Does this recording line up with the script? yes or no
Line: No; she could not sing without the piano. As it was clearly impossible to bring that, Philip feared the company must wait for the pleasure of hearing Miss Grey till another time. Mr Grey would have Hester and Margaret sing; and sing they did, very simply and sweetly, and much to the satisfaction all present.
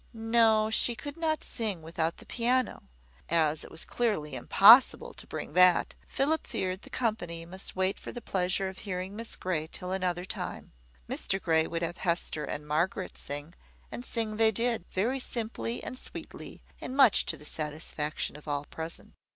no